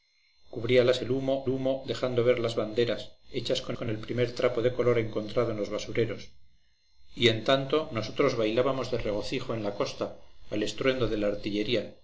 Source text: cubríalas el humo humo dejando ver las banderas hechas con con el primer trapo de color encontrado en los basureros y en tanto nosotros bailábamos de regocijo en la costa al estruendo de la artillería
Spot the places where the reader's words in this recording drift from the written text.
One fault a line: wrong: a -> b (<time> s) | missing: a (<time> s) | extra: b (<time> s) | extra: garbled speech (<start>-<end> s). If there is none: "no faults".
no faults